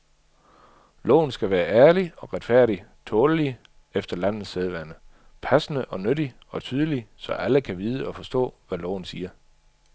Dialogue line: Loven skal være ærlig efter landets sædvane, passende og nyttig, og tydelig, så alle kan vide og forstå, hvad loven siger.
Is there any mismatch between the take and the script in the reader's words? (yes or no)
yes